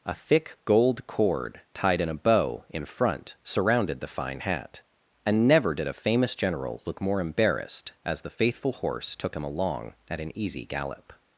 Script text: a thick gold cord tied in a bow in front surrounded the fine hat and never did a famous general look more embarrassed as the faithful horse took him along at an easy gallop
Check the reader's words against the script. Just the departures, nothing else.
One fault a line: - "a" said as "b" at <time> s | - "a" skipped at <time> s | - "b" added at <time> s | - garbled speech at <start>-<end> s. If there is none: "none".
none